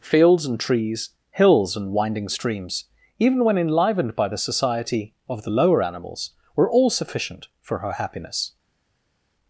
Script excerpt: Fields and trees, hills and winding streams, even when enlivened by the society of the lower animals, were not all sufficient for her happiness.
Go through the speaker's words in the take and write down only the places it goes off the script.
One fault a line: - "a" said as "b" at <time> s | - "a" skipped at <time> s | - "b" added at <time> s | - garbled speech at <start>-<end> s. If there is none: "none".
- "not" skipped at 6.7 s